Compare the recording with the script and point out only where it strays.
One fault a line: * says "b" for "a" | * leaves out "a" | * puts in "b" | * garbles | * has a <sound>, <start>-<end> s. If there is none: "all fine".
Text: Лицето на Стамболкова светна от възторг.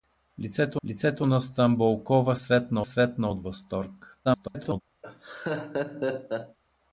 * puts in "лицето"
* puts in "светна"
* garbles
* has a laugh, 5.0-6.6 s